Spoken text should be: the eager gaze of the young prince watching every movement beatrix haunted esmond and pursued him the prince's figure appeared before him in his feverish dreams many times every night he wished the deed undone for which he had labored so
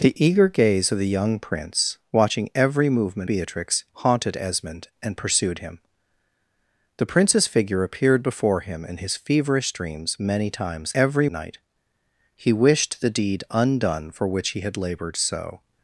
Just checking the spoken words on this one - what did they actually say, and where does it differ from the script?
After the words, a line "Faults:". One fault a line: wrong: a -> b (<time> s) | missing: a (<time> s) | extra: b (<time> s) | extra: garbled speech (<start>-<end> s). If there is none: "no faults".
the eager gaze of the young prince watching every movement beatrix haunted esmond and pursued him the prince's figure appeared before him in his feverish dreams many times every night he wished the deed undone for which he had labored so
Faults:
no faults